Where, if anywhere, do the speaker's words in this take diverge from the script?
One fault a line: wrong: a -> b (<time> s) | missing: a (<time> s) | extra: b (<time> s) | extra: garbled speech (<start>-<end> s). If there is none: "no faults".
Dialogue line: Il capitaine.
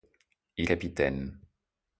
no faults